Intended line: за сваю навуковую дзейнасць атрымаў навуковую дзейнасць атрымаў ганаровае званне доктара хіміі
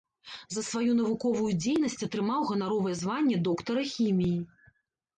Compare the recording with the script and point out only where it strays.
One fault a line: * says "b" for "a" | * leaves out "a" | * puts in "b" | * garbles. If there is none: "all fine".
* leaves out "навуковую дзейнасць атрымаў"